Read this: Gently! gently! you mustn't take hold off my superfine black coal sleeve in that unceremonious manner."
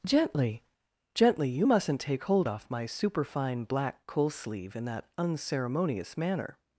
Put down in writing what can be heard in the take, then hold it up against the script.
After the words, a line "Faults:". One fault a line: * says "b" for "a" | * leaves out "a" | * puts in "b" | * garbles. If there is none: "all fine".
Gently! gently! you mustn't take hold off my superfine black coal sleeve in that unceremonious manner."
Faults:
all fine